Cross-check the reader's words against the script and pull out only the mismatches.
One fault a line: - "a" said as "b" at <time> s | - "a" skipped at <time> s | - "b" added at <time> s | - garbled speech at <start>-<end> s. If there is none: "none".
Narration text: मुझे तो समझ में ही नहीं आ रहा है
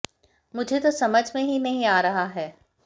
none